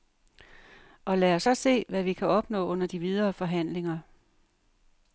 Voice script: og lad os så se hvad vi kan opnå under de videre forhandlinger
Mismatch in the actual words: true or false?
false